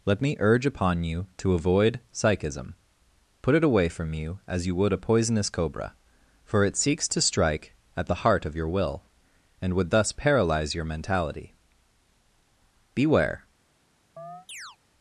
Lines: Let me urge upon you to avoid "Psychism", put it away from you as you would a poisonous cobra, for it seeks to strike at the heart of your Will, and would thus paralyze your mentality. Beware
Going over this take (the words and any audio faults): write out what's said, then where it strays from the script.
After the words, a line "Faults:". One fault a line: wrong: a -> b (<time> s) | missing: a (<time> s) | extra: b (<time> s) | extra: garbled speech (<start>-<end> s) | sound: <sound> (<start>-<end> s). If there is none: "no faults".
Let me urge upon you to avoid "Psychism", put it away from you as you would a poisonous cobra, for it seeks to strike at the heart of your Will, and would thus paralyze your mentality. Beware
Faults:
sound: chirp (14.2-14.8 s)